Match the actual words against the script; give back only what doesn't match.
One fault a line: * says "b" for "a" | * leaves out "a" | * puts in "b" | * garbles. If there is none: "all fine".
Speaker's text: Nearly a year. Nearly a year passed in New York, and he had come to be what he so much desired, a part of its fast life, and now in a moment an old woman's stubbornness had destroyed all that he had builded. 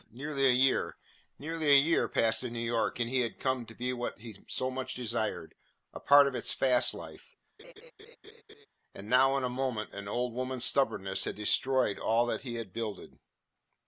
all fine